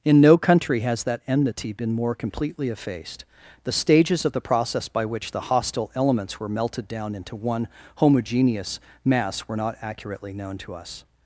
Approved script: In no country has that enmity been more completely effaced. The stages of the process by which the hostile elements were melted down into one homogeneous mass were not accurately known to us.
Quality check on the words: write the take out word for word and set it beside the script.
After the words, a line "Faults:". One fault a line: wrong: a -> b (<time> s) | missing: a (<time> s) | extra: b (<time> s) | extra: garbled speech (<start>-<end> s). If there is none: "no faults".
In no country has that enmity been more completely effaced. The stages of the process by which the hostile elements were melted down into one homogeneous mass were not accurately known to us.
Faults:
no faults